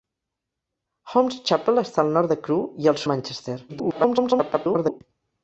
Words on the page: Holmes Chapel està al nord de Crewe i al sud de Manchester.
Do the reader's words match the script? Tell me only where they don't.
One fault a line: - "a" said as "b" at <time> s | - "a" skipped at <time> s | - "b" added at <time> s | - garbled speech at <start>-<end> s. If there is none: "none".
- "sud" skipped at 3.0 s
- garbled speech at 3.7-5.0 s